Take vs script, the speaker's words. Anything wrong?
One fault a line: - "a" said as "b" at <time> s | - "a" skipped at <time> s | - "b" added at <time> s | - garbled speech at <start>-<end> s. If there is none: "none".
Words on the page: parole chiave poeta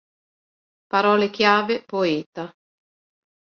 none